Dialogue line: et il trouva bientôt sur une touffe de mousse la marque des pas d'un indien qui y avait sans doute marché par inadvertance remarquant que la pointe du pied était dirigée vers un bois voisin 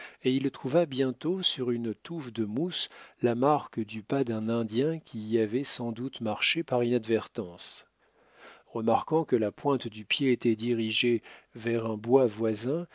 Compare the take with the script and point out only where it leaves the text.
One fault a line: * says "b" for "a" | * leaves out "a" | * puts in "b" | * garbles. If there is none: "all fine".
* says "du" for "des"